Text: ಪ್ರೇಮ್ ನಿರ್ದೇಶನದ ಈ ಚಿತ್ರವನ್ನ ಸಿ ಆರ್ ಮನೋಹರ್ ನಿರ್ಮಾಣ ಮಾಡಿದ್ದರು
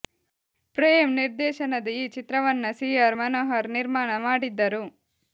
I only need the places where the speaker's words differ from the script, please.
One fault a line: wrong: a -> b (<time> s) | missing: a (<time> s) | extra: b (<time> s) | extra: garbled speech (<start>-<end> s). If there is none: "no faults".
no faults